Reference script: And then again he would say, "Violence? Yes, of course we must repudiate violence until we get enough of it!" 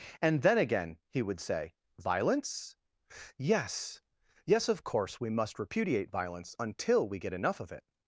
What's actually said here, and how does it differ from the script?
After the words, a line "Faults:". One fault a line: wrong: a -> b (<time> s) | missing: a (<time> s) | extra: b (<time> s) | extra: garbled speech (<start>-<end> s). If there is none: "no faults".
And then again he would say, "Violence? Yes Yes, of course we must repudiate violence until we get enough of it!"
Faults:
extra: Yes (4.4 s)